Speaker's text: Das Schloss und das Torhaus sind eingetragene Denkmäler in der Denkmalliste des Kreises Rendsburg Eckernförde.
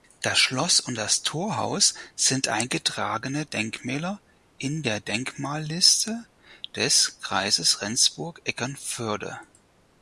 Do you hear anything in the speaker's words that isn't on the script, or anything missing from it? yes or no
no